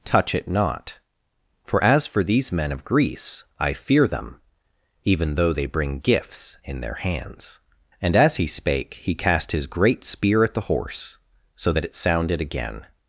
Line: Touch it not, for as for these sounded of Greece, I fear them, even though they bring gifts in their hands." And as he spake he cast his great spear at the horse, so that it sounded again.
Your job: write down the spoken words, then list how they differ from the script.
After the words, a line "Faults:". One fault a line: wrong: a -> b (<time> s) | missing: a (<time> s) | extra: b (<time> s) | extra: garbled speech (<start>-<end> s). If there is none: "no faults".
Touch it not, for as for these men of Greece, I fear them, even though they bring gifts in their hands." And as he spake he cast his great spear at the horse, so that it sounded again.
Faults:
wrong: sounded -> men (2.5 s)